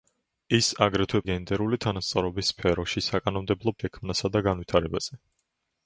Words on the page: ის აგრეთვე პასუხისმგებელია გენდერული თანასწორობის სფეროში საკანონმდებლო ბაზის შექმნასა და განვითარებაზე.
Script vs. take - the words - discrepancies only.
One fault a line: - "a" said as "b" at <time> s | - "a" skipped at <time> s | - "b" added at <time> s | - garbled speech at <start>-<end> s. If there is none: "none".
- "პასუხისმგებელია" skipped at 1.2 s
- "ბაზის" skipped at 3.8 s